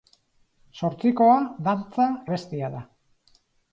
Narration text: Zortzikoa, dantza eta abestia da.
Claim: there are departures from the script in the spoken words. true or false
true